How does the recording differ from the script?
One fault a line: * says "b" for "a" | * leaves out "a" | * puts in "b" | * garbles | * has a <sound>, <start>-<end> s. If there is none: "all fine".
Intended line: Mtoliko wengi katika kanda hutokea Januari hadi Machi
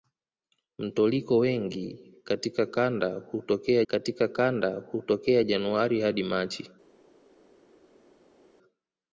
* puts in "katika kanda hutokea"